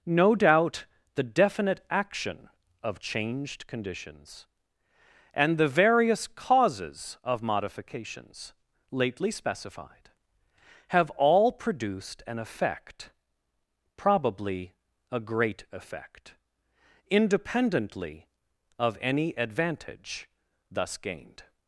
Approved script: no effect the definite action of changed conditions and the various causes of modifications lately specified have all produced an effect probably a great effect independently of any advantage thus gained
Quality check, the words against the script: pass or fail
fail